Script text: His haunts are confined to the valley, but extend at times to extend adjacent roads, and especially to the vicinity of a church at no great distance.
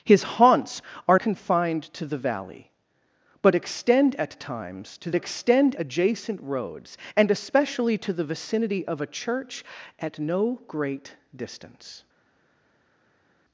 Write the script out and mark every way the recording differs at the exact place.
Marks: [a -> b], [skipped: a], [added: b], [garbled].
His haunts are confined to the valley, but extend at times to extend adjacent roads, and especially to the vicinity of a church at no great distance.